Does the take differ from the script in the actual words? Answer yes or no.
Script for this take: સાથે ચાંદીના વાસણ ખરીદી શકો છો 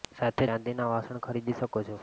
no